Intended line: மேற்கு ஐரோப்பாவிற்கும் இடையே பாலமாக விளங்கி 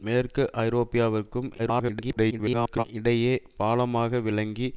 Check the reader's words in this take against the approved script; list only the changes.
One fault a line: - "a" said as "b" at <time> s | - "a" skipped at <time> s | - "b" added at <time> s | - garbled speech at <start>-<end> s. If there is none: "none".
- garbled speech at 1.6-2.8 s